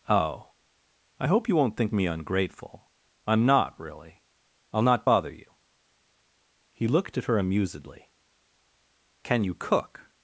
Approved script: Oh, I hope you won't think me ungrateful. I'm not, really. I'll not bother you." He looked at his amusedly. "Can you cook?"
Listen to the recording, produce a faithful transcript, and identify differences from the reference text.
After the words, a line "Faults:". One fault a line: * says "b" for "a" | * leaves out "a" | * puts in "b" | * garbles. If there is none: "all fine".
Oh, I hope you won't think me ungrateful. I'm not, really. I'll not bother you." He looked at her amusedly. "Can you cook?"
Faults:
* says "her" for "his"